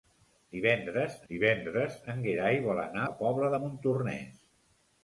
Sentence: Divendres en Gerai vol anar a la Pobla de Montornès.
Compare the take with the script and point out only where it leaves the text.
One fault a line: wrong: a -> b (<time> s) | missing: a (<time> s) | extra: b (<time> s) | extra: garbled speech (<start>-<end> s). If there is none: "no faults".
extra: divendres (1.3 s)
missing: a (3.1 s)